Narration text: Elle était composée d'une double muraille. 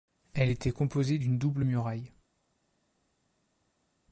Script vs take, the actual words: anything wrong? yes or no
no